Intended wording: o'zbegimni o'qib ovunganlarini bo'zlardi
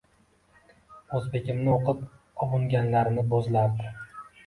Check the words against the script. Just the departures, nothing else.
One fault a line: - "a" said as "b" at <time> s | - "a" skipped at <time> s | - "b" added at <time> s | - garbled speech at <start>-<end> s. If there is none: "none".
none